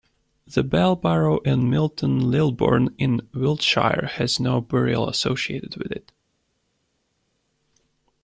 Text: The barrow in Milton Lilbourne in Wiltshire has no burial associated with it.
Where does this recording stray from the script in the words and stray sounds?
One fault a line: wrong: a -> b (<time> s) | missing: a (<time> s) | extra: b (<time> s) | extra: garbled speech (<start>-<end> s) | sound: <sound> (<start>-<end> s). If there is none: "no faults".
extra: bell (0.6 s)